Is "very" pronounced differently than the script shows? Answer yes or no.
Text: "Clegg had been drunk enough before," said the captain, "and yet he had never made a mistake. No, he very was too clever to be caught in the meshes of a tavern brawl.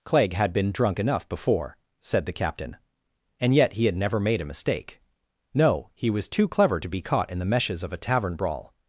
yes